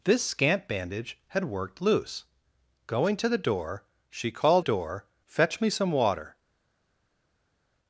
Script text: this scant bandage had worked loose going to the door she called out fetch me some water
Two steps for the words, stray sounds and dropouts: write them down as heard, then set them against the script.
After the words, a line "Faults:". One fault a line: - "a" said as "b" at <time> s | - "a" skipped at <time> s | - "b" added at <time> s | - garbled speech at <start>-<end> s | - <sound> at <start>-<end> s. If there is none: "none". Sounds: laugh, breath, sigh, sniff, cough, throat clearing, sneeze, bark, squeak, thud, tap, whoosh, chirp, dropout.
this scant bandage had worked loose going to the door she called door fetch me some water
Faults:
- "out" said as "door" at 4.6 s